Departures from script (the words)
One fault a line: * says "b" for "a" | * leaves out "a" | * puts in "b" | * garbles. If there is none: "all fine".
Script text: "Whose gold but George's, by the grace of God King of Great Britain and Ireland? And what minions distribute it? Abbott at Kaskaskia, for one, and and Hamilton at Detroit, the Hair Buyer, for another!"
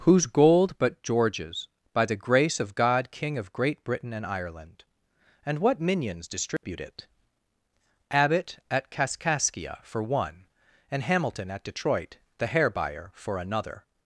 * leaves out "and"